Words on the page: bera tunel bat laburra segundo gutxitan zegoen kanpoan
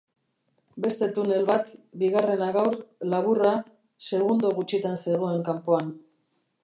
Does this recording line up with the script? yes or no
no